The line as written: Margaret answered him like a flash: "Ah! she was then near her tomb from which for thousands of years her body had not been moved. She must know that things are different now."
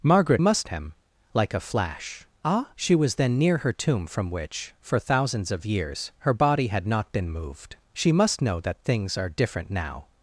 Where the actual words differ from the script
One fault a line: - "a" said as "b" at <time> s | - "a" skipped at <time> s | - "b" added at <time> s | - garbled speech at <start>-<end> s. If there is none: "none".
- "answered" said as "must" at 0.4 s